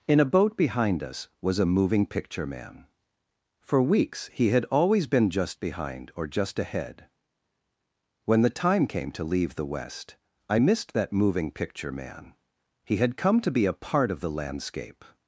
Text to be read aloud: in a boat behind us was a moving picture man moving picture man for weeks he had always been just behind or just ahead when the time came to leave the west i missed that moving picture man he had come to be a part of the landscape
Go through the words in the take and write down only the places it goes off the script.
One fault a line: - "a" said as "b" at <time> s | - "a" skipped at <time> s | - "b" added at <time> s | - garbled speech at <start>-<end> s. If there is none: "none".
- "moving picture man" skipped at 2.9 s